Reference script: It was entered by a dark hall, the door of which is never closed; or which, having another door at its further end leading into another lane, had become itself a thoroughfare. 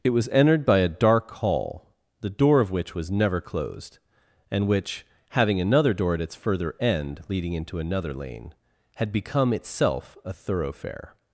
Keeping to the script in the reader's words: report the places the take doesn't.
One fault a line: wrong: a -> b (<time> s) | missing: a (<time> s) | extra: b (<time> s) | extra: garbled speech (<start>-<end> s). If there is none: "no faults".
wrong: is -> was (3.0 s)
wrong: or -> and (4.5 s)